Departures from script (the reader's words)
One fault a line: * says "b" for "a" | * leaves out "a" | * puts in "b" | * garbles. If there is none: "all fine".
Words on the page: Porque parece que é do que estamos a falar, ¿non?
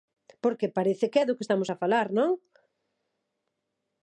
all fine